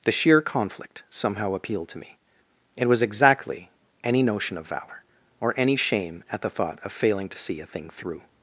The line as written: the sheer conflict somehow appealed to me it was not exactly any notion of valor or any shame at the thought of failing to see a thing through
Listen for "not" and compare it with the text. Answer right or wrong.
wrong